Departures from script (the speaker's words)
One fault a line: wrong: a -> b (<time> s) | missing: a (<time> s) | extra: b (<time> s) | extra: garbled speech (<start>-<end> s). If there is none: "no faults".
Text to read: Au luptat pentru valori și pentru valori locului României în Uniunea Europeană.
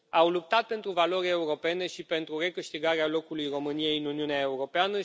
extra: europene (1.3 s)
wrong: valori -> recâștigarea (2.4 s)